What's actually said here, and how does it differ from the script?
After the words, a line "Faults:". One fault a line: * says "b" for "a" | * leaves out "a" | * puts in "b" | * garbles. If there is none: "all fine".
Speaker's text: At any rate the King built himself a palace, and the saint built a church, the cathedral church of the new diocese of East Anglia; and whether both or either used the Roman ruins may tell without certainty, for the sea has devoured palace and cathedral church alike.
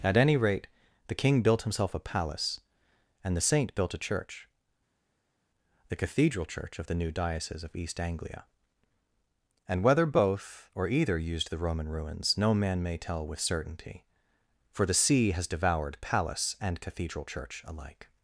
At any rate the King built himself a palace, and the saint built a church, the cathedral church of the new diocese of East Anglia; and whether both or either used the Roman ruins no man may tell with certainty, for the sea has devoured palace and cathedral church alike.
Faults:
* puts in "no man"
* says "with" for "without"